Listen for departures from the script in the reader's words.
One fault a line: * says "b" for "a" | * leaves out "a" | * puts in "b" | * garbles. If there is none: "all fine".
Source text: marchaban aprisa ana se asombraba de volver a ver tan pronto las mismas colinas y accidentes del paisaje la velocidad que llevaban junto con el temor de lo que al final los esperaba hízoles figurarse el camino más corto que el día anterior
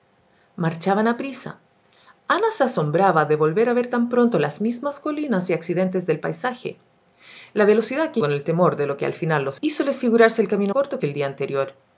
* leaves out "llevaban junto"
* leaves out "esperaba"
* leaves out "más"